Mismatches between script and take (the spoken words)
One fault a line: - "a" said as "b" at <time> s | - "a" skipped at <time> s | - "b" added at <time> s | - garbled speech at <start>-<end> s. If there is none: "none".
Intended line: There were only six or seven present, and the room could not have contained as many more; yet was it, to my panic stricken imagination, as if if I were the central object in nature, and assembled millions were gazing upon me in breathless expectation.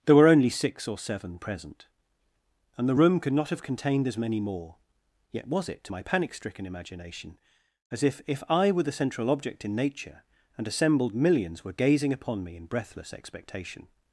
none